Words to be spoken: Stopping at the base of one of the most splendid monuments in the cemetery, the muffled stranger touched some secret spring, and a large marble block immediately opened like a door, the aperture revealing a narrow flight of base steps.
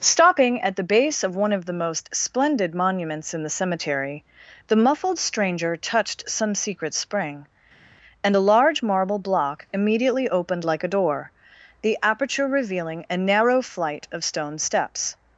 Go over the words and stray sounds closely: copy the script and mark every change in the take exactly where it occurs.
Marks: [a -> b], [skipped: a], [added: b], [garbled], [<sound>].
Stopping at the base of one of the most splendid monuments in the cemetery, the muffled stranger touched some secret spring, and a large marble block immediately opened like a door, the aperture revealing a narrow flight of [base -> stone] steps.